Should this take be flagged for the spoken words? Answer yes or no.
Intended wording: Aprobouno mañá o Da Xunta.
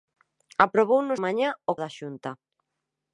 no